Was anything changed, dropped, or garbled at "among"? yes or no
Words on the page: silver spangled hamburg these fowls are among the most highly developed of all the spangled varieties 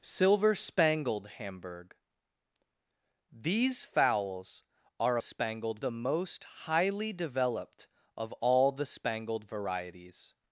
yes